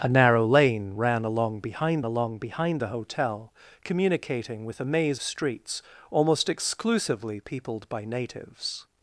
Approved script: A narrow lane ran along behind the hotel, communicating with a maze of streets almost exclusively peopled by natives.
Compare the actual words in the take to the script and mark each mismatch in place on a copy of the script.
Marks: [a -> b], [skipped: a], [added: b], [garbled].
A narrow lane ran along behind [added: along behind] the hotel, communicating with a maze [skipped: of] streets almost exclusively peopled by natives.